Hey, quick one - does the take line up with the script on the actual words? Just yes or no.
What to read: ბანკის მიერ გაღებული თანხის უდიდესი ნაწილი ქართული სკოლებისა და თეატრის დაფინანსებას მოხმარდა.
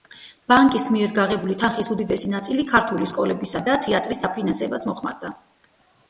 yes